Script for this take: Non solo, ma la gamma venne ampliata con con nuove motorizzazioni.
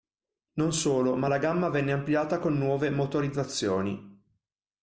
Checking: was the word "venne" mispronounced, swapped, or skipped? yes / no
no